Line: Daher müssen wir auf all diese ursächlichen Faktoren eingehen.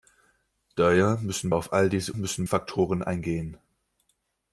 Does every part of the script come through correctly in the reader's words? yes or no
no